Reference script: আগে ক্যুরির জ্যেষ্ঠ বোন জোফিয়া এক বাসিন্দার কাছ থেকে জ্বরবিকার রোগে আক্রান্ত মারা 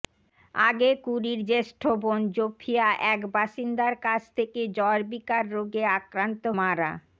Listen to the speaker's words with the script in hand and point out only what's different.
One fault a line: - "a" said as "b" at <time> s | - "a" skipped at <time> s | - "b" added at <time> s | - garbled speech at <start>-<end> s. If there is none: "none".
none